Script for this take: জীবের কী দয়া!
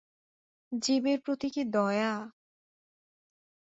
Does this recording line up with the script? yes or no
no